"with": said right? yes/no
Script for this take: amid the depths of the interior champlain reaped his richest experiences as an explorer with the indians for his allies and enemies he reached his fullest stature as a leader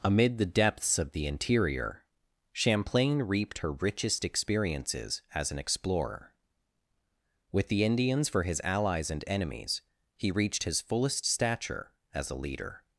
yes